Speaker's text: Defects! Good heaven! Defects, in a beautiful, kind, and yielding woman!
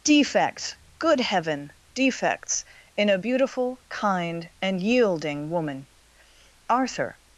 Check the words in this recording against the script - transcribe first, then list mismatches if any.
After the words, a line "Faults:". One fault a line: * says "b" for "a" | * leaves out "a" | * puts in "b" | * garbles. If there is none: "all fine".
Defects! Good heaven! Defects, in a beautiful, kind, and yielding woman! Arthur
Faults:
* puts in "Arthur"